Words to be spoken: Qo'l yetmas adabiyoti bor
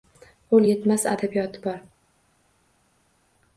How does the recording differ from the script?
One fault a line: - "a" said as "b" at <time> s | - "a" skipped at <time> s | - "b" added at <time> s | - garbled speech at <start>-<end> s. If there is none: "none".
none